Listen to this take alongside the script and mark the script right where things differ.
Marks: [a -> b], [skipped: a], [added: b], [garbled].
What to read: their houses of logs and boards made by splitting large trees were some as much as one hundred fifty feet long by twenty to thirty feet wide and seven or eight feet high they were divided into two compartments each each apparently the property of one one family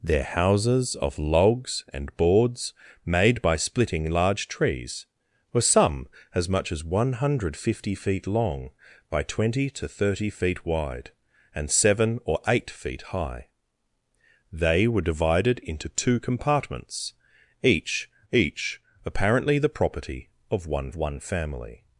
their houses of logs and boards made by splitting large trees were some as much as one hundred fifty feet long by twenty to thirty feet wide and seven or eight feet high they were divided into two compartments each each apparently the property of one one family